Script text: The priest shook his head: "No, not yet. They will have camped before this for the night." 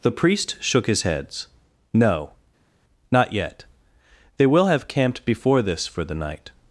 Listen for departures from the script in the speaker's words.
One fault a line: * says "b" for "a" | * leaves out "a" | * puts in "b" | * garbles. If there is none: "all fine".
* says "heads" for "head"